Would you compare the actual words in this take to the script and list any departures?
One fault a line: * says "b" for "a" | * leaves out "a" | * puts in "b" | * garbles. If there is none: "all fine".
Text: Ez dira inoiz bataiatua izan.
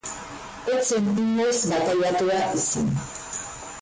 * says "zen" for "dira"